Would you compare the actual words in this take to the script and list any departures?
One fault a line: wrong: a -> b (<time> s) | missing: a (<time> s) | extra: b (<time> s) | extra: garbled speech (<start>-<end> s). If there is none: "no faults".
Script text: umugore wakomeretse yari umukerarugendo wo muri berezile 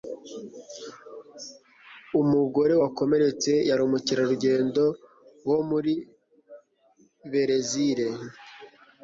no faults